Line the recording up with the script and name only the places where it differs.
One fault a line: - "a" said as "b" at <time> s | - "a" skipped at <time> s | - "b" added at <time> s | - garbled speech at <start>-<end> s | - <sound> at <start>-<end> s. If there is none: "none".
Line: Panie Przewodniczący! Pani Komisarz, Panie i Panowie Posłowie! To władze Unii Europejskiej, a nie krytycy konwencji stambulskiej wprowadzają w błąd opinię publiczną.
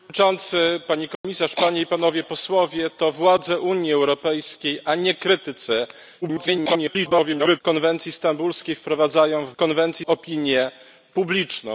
- dropout at 1.2-1.2 s
- garbled speech at 6.2-7.6 s
- "błąd" said as "konwencji" at 9.6 s